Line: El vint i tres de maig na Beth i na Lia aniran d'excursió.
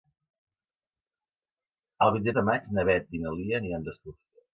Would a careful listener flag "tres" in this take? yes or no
yes